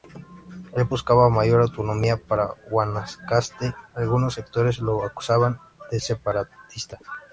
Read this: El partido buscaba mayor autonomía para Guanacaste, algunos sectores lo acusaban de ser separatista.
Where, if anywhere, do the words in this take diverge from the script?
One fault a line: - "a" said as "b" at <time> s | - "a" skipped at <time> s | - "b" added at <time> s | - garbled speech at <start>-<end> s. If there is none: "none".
- "partido" skipped at 0.9 s
- "ser" skipped at 6.0 s